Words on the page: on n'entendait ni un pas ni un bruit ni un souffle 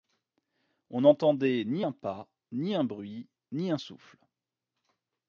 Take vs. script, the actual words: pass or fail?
pass